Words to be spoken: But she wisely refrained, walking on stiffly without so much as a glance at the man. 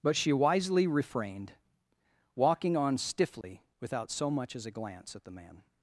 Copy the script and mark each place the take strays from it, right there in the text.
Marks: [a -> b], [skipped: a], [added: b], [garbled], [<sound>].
But she wisely refrained, walking on stiffly [dropout] without so much as a glance at the man.